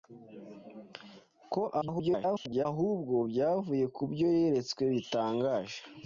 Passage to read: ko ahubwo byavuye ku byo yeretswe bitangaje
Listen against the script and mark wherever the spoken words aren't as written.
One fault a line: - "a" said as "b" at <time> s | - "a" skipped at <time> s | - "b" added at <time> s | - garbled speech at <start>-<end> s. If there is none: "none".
- garbled speech at 1.8-2.7 s